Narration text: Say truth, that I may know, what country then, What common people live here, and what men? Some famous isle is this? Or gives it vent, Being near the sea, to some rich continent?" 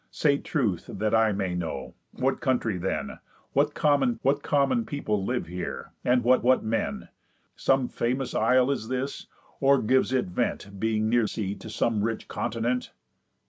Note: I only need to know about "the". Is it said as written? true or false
false